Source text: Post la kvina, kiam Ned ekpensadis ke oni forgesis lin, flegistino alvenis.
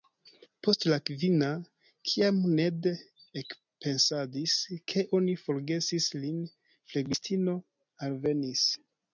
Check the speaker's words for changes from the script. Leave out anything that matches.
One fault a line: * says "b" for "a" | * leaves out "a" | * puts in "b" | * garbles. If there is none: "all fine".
all fine